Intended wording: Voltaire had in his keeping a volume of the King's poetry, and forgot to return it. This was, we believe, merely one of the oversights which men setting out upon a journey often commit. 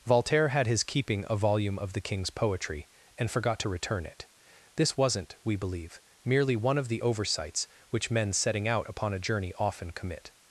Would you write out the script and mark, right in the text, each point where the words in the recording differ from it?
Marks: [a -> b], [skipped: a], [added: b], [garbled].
Voltaire had [skipped: in] his keeping a volume of the King's poetry, and forgot to return it. This [was, -> wasn't] we believe, merely one of the oversights which men setting out upon a journey often commit.